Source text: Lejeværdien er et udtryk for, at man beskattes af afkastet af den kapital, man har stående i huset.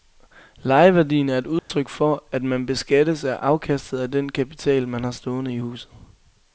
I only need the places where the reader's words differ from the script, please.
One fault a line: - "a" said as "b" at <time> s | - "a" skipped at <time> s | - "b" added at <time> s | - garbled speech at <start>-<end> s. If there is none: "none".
none